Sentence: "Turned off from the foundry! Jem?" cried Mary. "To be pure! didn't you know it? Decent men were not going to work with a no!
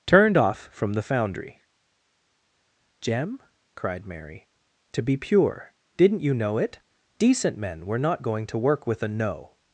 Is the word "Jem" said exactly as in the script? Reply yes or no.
yes